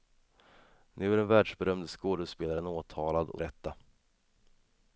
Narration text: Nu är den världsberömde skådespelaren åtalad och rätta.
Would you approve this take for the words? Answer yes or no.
yes